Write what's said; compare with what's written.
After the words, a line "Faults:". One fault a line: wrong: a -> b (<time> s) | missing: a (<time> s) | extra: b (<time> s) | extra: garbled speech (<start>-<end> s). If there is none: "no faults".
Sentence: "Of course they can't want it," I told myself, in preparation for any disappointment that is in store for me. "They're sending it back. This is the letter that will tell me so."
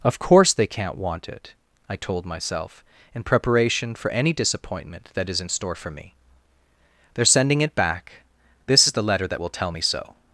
"Of course they can't want it," I told myself, in preparation for any disappointment that is in store for me. "They're sending it back. This is the letter that will tell me so."
Faults:
no faults